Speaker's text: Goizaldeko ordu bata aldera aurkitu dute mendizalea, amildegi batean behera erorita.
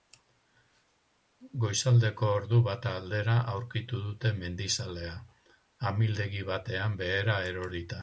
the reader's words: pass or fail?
pass